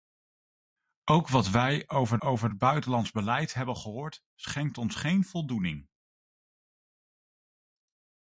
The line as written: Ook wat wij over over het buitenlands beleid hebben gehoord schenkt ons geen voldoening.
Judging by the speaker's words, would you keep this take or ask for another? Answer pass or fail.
pass